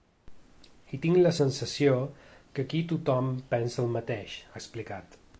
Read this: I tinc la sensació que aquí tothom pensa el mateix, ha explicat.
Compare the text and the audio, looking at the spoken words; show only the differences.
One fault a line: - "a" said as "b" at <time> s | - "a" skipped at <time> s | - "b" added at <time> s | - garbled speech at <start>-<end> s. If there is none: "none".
none